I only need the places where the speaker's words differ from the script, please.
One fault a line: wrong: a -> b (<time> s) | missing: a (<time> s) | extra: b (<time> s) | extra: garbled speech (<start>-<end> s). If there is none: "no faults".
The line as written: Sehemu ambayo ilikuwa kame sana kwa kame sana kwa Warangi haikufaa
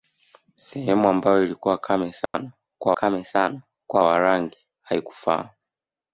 no faults